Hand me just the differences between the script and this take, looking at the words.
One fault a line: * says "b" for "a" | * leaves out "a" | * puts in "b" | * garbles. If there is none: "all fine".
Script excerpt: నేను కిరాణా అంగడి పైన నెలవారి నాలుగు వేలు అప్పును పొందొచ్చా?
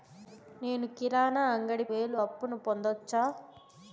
* leaves out "పైన నెలవారి నాలుగు"